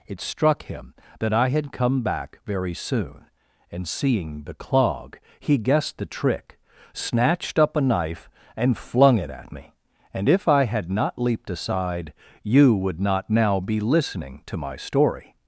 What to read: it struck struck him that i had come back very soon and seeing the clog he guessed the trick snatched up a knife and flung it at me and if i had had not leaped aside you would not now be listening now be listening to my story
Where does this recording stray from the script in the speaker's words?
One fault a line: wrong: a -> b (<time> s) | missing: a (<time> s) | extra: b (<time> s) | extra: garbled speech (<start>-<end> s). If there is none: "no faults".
missing: struck (0.6 s)
missing: had (10.9 s)
missing: now be listening (14.4 s)